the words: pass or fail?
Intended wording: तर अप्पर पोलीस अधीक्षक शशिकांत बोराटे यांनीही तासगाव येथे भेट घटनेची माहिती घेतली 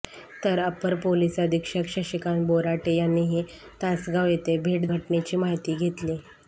pass